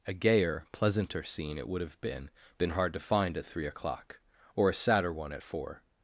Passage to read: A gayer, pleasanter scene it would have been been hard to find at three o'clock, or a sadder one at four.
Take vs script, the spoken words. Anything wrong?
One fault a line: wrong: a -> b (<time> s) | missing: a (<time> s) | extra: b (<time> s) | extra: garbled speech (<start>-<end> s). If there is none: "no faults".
no faults